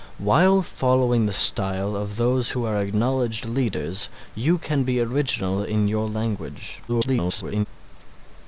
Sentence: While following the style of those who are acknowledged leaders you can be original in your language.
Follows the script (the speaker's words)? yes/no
no